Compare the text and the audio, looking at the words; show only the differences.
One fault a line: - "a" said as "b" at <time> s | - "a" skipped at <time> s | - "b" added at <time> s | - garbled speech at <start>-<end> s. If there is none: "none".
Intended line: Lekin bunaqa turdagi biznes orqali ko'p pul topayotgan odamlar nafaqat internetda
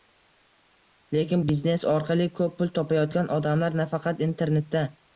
- "bunaqa turdagi" skipped at 1.4 s